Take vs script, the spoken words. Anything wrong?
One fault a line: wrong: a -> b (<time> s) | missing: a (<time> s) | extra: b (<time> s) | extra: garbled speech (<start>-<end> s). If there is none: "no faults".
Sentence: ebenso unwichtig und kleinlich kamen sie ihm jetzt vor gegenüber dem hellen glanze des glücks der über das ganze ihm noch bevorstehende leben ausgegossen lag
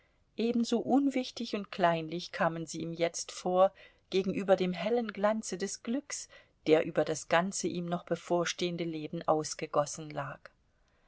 no faults